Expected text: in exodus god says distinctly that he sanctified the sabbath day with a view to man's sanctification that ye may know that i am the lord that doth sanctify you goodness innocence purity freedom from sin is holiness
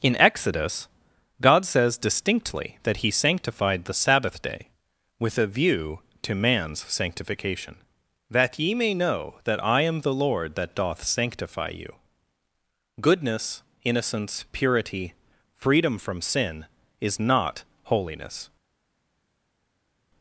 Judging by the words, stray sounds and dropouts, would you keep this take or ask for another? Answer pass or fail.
fail